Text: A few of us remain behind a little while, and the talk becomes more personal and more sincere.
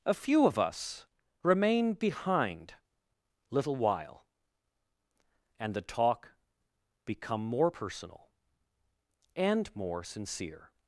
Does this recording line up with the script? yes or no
no